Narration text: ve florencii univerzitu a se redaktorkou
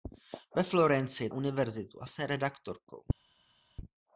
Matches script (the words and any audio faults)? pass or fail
pass